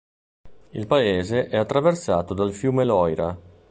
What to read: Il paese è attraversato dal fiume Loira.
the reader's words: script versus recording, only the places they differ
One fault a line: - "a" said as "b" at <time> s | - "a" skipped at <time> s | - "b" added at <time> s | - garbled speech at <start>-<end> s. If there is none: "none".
none